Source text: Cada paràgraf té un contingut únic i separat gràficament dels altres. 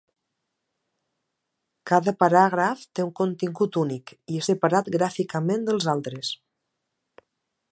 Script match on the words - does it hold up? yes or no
yes